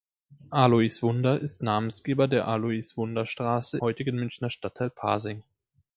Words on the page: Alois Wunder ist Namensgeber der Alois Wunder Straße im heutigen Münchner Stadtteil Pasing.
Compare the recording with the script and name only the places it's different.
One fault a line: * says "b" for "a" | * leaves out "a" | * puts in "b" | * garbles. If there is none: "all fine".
* leaves out "im"